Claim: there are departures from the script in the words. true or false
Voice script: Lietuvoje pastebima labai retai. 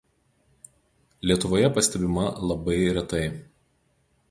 false